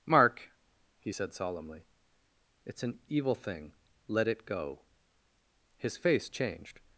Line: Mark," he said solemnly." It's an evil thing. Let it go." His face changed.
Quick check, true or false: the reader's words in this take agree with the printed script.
true